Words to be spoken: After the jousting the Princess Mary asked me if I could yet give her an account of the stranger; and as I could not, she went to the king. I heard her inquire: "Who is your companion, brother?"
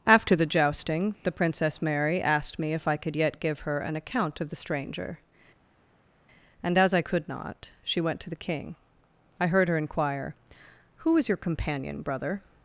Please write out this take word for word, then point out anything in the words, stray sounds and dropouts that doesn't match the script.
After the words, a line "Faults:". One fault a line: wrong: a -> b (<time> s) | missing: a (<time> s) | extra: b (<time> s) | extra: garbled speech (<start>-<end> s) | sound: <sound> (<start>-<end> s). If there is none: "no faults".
After the jousting the Princess Mary asked me if I could yet give her an account of the stranger; and as I could not, she went to the king. I heard her inquire: "Who is your companion, brother?"
Faults:
no faults